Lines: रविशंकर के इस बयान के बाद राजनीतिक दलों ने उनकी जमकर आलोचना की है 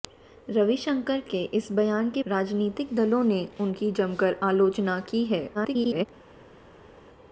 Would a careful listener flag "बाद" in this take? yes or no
yes